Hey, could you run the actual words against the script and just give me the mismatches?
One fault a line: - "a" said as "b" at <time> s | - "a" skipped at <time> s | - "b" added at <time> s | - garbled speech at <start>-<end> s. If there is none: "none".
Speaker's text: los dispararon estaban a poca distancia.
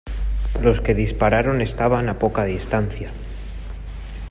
- "que" added at 0.8 s